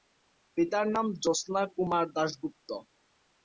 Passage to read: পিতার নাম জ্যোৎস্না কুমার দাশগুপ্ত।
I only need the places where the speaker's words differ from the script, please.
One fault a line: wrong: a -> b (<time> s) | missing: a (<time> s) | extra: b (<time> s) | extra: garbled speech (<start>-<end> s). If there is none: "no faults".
no faults